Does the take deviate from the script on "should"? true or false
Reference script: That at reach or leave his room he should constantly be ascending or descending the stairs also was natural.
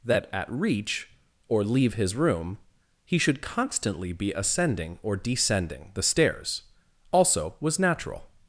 false